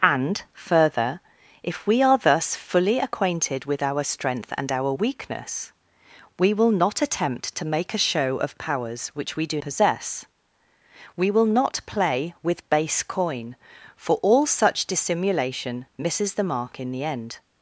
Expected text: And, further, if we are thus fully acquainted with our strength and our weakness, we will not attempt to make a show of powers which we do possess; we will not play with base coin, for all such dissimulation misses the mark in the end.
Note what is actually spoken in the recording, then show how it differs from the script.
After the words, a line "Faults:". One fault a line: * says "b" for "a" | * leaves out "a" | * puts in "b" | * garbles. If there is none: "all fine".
And, further, if we are thus fully acquainted with our strength and our weakness, we will not attempt to make a show of powers which we do possess; we will not play with base coin, for all such dissimulation misses the mark in the end.
Faults:
all fine